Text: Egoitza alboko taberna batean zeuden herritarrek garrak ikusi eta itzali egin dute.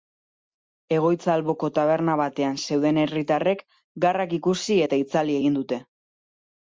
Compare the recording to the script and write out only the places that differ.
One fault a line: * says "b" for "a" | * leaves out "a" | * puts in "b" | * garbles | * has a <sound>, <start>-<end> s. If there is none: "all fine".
all fine